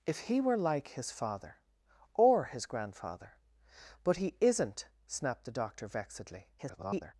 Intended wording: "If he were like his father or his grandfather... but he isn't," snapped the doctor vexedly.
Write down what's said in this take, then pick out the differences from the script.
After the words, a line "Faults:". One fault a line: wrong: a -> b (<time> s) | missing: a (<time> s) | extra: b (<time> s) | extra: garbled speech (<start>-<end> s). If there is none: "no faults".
"If he were like his father or his grandfather... but he isn't," snapped the doctor vexedly. [garbled]
Faults:
extra: garbled speech (6.6-7.1 s)